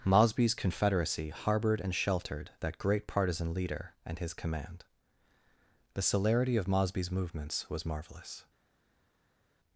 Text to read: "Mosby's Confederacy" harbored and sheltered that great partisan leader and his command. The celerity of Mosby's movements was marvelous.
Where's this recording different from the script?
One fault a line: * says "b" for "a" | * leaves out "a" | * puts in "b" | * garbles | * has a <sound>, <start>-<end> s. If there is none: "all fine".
all fine